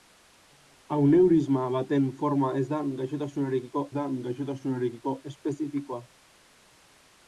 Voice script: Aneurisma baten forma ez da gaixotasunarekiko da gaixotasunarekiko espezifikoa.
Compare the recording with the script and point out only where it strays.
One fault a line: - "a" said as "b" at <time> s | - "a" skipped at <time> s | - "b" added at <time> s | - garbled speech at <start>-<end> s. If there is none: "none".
none